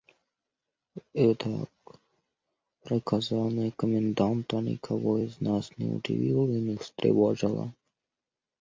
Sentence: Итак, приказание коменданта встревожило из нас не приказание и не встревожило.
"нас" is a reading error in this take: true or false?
false